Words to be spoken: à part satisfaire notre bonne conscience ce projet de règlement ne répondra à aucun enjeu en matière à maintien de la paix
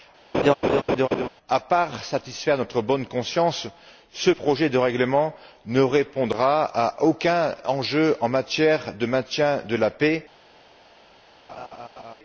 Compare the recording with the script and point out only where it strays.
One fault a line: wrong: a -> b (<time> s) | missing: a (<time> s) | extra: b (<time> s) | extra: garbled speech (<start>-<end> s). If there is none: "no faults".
wrong: à -> de (8.9 s)